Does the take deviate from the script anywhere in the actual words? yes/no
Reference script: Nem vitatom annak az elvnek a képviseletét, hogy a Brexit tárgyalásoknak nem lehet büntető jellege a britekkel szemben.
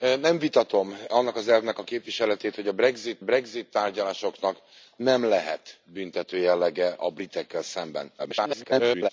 yes